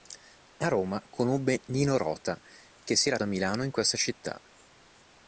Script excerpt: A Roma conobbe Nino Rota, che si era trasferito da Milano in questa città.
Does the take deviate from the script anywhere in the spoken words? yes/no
yes